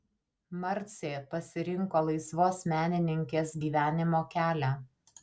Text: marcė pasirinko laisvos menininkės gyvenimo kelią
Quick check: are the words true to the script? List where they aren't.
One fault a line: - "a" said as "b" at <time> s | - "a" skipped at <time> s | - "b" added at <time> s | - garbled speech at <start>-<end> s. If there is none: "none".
none